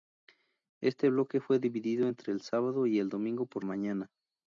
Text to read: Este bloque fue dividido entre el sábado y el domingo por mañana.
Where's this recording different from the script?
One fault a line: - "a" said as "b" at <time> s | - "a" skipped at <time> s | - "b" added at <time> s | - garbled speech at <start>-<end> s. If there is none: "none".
none